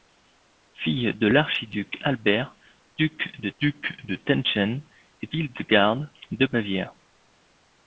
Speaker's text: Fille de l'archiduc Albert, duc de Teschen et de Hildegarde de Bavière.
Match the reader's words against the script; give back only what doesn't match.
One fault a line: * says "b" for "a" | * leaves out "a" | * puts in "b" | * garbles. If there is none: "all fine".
* puts in "duc de"
* leaves out "de"